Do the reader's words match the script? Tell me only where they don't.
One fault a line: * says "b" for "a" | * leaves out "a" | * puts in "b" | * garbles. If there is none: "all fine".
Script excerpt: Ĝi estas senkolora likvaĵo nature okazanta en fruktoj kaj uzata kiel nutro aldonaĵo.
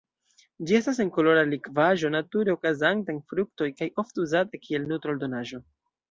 * puts in "ofte"